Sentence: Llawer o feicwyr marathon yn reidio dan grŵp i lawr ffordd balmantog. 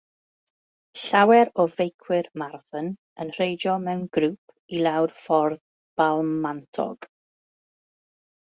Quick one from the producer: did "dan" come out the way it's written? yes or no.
no